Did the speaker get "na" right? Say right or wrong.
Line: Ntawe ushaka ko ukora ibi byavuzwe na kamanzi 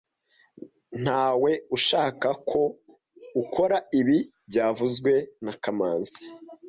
right